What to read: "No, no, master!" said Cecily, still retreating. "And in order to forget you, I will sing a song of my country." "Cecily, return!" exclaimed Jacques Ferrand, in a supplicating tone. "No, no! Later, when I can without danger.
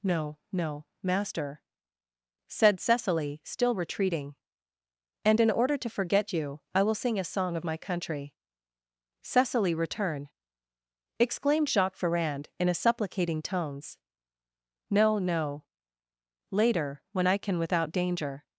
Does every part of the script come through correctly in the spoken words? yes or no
no